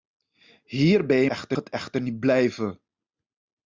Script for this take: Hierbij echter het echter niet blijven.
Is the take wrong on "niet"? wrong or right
right